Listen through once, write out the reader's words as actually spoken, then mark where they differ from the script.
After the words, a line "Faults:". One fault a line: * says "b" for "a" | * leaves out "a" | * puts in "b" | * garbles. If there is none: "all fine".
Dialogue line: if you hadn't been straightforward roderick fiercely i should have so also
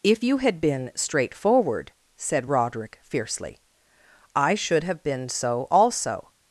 if you had been straightforward said roderick fiercely i should have been so also
Faults:
* says "had" for "hadn't"
* puts in "said"
* puts in "been"